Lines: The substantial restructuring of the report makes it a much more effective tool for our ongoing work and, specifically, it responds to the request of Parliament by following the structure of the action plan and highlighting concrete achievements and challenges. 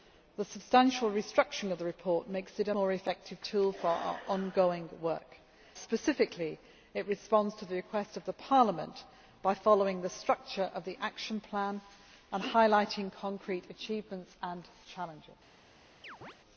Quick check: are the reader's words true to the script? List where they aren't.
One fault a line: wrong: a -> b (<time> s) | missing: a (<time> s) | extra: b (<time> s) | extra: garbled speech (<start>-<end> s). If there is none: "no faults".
missing: much (2.7 s)
missing: and (5.4 s)